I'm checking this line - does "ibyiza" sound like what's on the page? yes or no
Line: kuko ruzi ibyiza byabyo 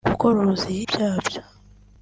no